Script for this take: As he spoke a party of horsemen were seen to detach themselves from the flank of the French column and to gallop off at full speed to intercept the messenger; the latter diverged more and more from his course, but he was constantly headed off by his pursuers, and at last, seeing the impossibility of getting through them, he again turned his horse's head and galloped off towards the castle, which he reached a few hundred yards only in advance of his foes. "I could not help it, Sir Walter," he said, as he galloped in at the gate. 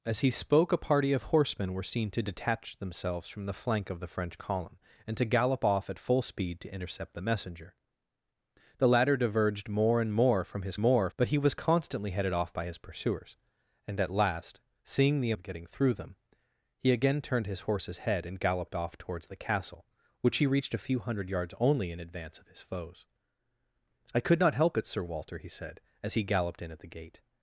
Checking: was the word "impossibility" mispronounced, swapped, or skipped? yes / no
yes